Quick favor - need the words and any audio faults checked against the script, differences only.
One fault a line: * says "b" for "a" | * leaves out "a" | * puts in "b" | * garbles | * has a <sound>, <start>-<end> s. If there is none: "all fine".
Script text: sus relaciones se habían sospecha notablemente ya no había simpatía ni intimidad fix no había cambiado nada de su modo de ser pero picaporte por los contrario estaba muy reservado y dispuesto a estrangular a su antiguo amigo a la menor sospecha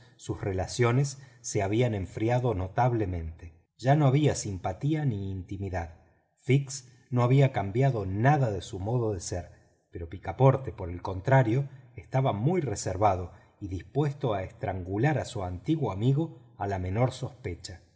* says "enfriado" for "sospecha"
* says "el" for "los"